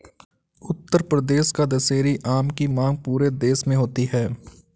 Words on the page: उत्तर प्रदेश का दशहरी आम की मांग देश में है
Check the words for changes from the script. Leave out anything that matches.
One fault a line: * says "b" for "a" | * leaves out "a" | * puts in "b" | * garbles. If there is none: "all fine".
* puts in "पूरे"
* puts in "होती"